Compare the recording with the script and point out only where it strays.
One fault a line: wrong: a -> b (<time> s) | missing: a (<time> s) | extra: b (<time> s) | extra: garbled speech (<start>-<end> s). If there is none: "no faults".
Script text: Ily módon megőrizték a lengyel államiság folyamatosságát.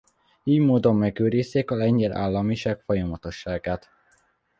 no faults